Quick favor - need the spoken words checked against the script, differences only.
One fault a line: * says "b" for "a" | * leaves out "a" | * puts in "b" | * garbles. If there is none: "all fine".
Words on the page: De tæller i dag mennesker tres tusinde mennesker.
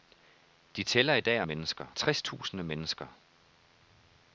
all fine